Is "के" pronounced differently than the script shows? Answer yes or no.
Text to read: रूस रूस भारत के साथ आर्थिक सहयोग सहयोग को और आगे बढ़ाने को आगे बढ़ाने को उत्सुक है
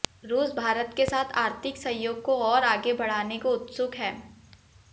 no